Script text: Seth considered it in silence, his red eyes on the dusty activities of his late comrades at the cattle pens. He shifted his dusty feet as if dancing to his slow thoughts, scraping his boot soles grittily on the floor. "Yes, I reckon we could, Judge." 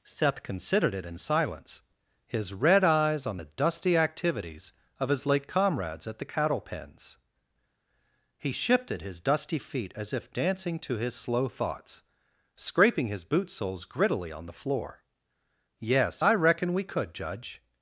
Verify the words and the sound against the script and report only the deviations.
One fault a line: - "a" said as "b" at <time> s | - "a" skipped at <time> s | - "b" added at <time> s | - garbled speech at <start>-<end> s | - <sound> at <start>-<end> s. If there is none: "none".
none